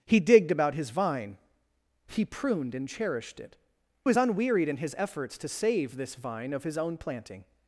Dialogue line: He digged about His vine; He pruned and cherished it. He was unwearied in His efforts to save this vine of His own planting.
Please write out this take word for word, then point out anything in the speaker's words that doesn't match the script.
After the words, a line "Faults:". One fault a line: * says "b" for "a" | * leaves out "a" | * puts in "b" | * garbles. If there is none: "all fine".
He digged about His vine; He pruned and cherished it. Was unwearied in His efforts to save this vine of His own planting.
Faults:
* leaves out "He"